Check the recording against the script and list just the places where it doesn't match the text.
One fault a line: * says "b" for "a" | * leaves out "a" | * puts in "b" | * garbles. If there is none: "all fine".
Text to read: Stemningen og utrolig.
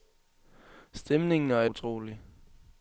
all fine